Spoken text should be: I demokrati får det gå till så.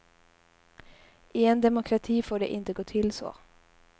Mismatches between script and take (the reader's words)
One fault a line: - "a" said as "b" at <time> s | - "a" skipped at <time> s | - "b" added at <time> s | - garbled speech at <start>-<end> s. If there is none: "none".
- "en" added at 1.4 s
- "inte" added at 2.5 s